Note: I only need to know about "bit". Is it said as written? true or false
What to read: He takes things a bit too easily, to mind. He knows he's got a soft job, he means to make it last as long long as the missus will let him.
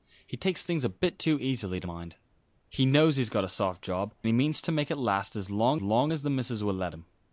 true